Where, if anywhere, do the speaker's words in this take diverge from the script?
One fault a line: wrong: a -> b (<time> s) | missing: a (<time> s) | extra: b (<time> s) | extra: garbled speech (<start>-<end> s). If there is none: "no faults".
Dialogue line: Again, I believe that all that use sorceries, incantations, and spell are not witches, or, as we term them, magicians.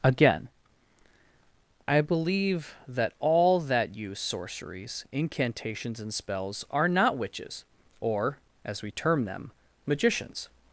wrong: spell -> spells (6.1 s)